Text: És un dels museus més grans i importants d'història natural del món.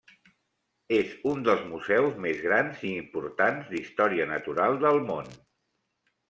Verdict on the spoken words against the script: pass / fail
pass